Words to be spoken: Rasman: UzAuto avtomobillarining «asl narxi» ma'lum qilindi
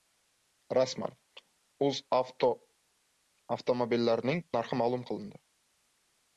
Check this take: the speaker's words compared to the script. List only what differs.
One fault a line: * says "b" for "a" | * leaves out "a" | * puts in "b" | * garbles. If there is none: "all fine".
* leaves out "asl"